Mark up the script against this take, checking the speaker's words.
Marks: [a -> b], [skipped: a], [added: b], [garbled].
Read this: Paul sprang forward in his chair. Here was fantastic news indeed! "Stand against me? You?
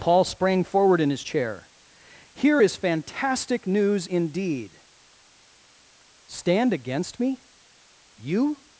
Paul sprang forward in his chair. Here [was -> is] fantastic news indeed! "Stand against me? You?